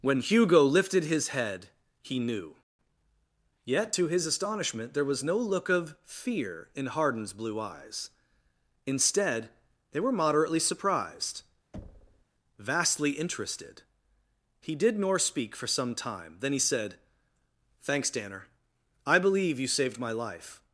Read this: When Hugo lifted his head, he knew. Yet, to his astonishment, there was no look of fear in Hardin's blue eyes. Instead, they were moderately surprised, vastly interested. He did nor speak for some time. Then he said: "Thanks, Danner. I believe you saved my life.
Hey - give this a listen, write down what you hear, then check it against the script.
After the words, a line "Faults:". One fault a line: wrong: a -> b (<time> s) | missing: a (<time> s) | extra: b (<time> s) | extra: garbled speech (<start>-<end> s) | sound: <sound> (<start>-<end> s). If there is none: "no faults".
When Hugo lifted his head, he knew. Yet, to his astonishment, there was no look of fear in Hardin's blue eyes. Instead, they were moderately surprised, vastly interested. He did nor speak for some time. Then he said: "Thanks, Danner. I believe you saved my life.
Faults:
sound: thud (11.7-12.3 s)